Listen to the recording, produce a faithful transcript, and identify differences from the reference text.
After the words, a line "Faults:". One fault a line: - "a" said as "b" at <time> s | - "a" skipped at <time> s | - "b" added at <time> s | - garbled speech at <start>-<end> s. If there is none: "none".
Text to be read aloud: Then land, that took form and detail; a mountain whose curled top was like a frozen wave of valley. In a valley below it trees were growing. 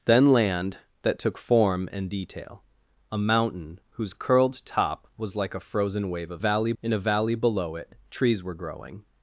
Then land, that took form and detail; a mountain whose curled top was like a frozen wave of valley. In a valley below it trees were growing.
Faults:
none